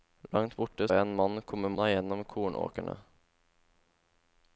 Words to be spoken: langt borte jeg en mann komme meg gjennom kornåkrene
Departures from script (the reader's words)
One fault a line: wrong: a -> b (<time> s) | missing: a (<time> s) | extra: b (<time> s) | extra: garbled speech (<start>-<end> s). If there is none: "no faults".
no faults